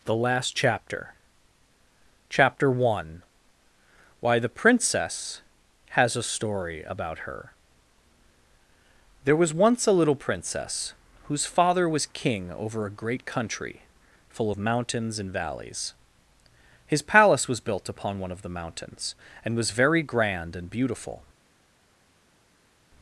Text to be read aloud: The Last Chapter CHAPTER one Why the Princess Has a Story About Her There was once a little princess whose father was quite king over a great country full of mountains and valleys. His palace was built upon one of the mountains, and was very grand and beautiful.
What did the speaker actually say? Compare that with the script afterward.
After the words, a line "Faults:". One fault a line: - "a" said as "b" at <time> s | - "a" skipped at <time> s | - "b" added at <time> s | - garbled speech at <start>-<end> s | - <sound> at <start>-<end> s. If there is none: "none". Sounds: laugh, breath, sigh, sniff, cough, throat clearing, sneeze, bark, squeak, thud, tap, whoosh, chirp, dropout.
The Last Chapter CHAPTER one Why the Princess Has a Story About Her There was once a little princess whose father was king over a great country full of mountains and valleys. His palace was built upon one of the mountains, and was very grand and beautiful.
Faults:
- "quite" skipped at 12.1 s